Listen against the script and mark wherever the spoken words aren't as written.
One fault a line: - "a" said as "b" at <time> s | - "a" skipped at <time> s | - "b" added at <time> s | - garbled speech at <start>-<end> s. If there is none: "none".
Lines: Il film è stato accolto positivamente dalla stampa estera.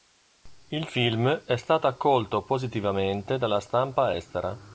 none